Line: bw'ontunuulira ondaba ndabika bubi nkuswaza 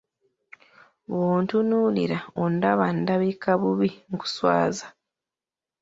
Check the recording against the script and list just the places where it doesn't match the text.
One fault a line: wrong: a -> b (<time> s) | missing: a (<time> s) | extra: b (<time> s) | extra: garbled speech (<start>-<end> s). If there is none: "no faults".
no faults